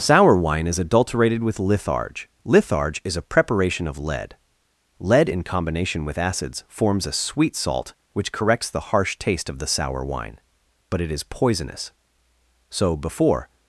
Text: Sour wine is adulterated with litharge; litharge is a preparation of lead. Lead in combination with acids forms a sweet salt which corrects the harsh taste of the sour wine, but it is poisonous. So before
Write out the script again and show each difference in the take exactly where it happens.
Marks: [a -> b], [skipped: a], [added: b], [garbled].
Sour wine is adulterated with litharge; litharge is a preparation of lead. Lead in combination with acids forms a sweet salt which corrects the harsh taste of the sour wine, but it is poisonous. So before